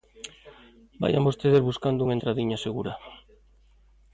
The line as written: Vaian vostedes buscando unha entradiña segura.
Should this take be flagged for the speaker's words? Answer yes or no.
no